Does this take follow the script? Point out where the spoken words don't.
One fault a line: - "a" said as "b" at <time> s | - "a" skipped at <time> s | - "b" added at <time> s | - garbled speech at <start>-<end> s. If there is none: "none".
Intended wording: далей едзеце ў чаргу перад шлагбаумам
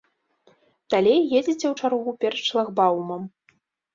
none